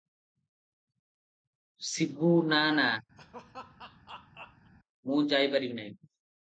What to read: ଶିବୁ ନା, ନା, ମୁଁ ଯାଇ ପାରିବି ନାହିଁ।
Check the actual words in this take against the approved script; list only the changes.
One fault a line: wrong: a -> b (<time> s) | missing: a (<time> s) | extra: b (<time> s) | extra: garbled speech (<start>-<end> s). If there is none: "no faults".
no faults